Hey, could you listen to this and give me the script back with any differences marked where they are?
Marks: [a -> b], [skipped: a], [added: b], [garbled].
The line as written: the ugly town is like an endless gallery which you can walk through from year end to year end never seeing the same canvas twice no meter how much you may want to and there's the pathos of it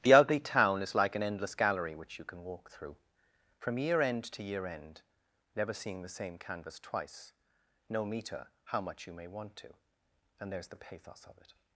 the ugly town is like an endless gallery which you can walk through from year end to year end never seeing the same canvas twice no meter how much you may want to and there's the pathos of it